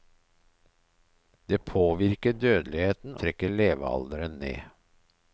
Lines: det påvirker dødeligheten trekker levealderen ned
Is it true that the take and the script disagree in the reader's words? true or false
false